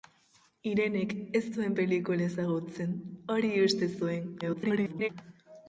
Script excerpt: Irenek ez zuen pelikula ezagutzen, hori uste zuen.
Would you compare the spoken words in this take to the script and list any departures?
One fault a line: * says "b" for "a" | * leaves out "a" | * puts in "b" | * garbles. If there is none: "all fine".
* garbles